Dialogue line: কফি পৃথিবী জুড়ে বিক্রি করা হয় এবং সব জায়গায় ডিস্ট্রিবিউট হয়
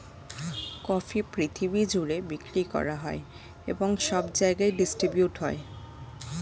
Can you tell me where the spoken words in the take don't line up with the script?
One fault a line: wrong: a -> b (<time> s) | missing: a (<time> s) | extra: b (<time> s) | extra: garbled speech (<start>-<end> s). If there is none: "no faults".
no faults